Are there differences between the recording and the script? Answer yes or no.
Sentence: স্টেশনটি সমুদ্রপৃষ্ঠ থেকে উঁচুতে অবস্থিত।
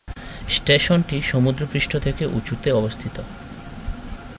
no